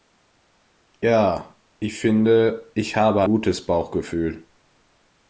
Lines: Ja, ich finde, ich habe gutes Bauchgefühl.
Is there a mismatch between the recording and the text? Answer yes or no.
no